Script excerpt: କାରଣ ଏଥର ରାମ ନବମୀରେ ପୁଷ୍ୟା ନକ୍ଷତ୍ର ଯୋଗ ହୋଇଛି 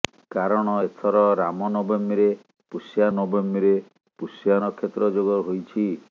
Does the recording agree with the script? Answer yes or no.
no